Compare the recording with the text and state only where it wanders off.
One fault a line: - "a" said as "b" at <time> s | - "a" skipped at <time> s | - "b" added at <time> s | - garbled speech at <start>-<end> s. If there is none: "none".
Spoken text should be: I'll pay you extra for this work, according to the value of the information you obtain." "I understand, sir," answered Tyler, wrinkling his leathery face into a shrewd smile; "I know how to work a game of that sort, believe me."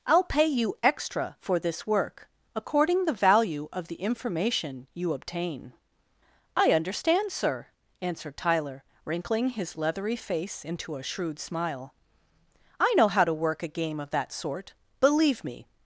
- "to" skipped at 3.0 s